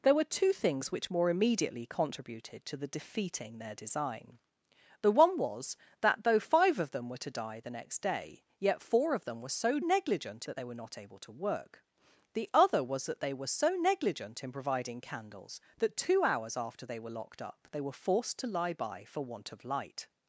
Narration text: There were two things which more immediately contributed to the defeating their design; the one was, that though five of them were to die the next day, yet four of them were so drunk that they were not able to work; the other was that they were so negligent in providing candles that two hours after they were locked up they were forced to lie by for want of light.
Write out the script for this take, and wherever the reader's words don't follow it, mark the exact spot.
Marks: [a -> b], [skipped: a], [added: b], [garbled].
There were two things which more immediately contributed to the defeating their design; the one was, that though five of them were to die the next day, yet four of them were so [drunk -> negligent] that they were not able to work; the other was that they were so negligent in providing candles that two hours after they were locked up they were forced to lie by for want of light.